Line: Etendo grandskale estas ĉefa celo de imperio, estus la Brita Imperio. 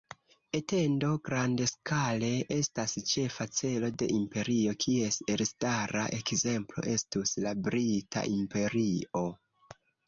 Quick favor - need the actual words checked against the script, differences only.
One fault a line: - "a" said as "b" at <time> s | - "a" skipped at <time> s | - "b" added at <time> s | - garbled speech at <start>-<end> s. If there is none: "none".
- "kies elstara ekzemplo" added at 4.9 s